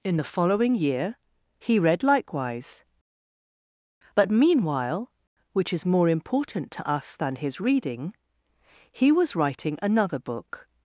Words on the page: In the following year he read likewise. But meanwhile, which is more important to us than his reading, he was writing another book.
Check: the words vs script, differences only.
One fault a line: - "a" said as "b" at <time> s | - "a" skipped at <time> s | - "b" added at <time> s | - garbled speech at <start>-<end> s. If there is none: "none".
none